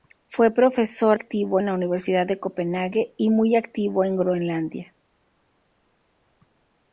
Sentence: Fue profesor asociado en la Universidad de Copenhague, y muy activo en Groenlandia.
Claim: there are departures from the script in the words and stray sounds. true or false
true